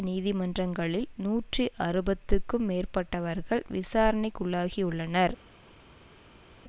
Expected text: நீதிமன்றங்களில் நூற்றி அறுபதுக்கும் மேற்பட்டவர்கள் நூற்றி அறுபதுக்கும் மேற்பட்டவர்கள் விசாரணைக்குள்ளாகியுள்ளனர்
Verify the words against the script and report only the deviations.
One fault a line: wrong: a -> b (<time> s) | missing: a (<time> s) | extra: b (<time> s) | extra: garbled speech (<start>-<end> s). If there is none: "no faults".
missing: நூற்றி அறுபதுக்கும் மேற்பட்டவர்கள் (3.6 s)